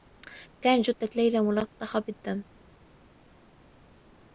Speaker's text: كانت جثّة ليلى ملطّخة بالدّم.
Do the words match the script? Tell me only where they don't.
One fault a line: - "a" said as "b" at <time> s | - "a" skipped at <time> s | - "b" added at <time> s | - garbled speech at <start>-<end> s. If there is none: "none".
none